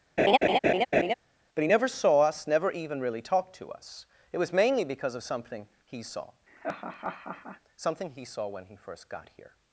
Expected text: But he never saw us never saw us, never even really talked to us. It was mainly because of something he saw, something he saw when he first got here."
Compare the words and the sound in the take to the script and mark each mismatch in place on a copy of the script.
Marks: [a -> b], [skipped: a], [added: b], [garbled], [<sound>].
[laugh] But he never saw us never [skipped: saw us, never] even really talked to us. It was mainly because of something he saw, [laugh] something he saw when he first got here."